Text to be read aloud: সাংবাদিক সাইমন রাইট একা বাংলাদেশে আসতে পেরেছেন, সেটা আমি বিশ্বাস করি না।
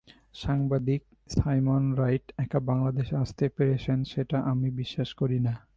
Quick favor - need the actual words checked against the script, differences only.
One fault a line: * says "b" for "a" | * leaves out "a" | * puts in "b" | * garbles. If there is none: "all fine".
all fine